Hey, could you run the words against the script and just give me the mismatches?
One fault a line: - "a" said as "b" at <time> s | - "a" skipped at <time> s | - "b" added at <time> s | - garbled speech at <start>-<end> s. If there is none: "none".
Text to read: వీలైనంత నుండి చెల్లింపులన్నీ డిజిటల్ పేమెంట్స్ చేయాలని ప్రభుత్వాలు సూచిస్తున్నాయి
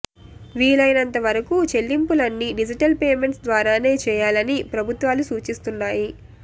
- "నుండి" said as "వరకు" at 1.2 s
- "ద్వారానే" added at 3.4 s